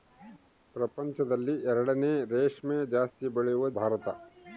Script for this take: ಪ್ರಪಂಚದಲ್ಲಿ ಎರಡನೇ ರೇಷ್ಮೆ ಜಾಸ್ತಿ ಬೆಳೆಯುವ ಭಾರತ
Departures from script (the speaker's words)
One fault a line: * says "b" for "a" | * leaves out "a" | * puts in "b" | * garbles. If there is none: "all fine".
all fine